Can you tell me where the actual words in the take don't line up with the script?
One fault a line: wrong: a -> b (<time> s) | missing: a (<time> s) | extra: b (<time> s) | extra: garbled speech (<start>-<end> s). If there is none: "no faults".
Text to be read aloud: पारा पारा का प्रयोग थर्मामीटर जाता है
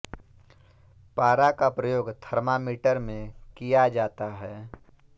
missing: पारा (1.5 s)
extra: में किया (3.0 s)